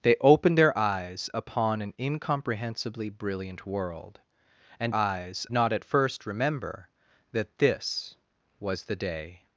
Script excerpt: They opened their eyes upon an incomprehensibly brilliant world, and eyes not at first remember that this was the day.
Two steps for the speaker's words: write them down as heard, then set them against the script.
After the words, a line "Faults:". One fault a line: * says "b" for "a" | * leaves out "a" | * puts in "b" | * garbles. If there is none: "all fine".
They opened their eyes upon an incomprehensibly brilliant world, and eyes not at first remember that this was the day.
Faults:
all fine